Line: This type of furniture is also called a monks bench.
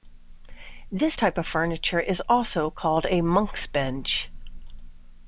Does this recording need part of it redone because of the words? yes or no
no